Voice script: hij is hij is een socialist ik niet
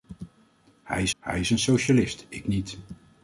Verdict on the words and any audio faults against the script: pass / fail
pass